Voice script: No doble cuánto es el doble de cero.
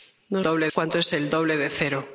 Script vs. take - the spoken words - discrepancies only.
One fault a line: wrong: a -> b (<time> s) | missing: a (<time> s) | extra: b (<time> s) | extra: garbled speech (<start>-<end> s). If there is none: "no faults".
no faults